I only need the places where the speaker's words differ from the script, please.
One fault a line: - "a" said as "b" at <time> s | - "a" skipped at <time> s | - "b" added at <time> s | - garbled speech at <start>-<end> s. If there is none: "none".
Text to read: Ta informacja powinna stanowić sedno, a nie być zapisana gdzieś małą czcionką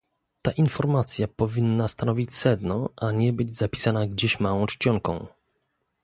none